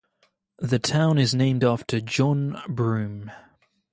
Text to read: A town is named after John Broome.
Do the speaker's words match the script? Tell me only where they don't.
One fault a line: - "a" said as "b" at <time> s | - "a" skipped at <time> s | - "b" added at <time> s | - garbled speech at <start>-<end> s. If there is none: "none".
- "A" said as "The" at 0.6 s